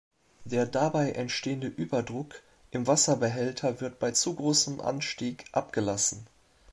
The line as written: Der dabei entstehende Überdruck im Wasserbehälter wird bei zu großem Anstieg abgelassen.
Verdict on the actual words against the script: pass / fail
pass